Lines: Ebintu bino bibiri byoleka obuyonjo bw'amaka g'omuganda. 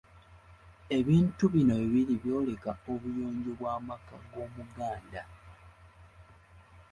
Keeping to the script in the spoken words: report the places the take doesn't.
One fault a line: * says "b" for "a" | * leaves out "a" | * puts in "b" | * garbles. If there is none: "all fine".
all fine